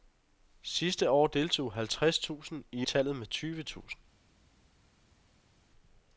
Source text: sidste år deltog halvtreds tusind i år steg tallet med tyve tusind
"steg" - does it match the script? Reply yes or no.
no